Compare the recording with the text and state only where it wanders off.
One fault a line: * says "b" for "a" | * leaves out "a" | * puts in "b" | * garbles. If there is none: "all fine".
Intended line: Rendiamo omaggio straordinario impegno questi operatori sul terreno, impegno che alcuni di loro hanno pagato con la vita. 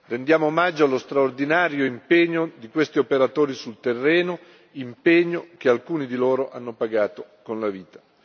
* puts in "allo"
* puts in "di"